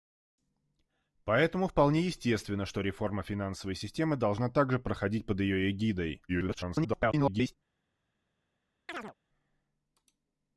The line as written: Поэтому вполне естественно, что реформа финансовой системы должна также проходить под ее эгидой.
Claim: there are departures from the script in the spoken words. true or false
true